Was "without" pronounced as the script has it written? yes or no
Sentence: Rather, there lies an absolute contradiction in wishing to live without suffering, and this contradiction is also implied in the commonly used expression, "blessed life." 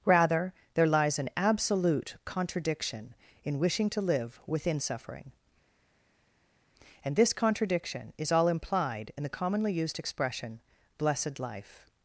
no